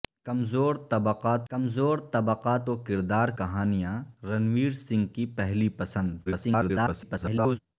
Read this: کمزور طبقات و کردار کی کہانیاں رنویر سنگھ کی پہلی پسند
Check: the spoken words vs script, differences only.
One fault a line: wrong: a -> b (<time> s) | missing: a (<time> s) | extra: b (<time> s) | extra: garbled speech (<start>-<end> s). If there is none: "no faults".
extra: کمزور طبقات (1.5 s)
missing: کی (3.3 s)
extra: garbled speech (6.3-7.6 s)